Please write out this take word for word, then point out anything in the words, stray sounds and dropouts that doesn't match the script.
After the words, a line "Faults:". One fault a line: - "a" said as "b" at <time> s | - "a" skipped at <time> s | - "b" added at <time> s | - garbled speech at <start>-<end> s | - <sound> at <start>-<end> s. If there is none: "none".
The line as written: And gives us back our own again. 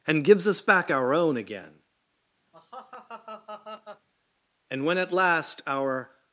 And gives us back our own again. And when at last our
Faults:
- laugh at 2.5-4.1 s
- "And when at last our" added at 4.7 s